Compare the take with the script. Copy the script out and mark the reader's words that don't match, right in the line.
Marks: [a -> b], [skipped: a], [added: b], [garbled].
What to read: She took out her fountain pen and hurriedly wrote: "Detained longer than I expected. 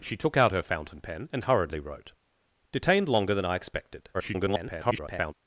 She took out her fountain pen and hurriedly wrote: "Detained longer than I expected. [garbled]